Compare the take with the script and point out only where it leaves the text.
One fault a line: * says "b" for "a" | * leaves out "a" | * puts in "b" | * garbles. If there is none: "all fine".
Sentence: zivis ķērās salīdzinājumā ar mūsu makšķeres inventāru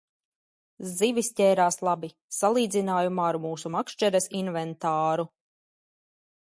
* puts in "labi"